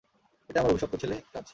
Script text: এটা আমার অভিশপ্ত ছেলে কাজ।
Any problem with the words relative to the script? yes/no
no